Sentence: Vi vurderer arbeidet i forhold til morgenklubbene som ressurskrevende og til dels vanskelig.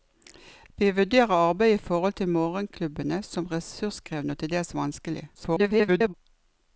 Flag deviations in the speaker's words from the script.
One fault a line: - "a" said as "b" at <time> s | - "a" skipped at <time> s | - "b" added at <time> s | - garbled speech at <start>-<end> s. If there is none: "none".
- garbled speech at 5.3-6.1 s